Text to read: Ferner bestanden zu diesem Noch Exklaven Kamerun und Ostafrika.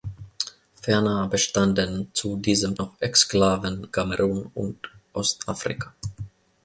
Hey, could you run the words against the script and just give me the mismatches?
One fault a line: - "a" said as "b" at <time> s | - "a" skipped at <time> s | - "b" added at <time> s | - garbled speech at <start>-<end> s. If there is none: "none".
none